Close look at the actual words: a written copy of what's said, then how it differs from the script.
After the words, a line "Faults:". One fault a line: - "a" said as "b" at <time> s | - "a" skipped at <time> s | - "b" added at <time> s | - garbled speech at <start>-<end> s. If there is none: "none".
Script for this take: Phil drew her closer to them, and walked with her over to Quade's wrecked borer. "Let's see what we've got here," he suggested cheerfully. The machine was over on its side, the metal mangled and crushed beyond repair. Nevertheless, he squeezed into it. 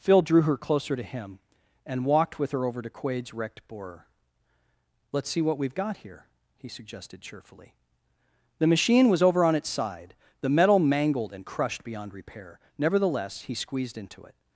Phil drew her closer to him, and walked with her over to Quade's wrecked borer. "Let's see what we've got here," he suggested cheerfully. The machine was over on its side, the metal mangled and crushed beyond repair. Nevertheless, he squeezed into it.
Faults:
- "them" said as "him" at 1.0 s